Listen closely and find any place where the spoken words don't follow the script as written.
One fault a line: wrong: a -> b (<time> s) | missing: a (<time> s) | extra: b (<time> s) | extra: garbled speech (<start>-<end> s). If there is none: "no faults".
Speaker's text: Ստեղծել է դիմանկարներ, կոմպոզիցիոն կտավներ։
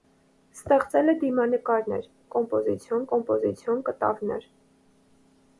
extra: կոմպոզիցիոն (3.1 s)